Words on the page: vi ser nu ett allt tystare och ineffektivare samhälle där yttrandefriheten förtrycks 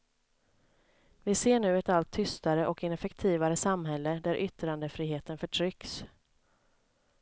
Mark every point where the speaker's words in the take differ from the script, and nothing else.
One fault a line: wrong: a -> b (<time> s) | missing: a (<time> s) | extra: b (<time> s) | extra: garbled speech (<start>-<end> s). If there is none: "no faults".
no faults